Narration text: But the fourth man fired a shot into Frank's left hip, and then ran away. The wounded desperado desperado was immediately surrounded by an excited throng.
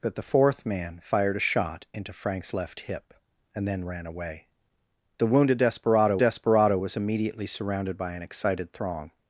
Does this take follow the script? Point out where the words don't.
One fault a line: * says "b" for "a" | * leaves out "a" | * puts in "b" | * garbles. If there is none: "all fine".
all fine